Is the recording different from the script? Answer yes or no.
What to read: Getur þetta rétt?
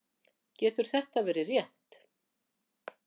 yes